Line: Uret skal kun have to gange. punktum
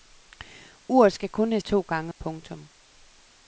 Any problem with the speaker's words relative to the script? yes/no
no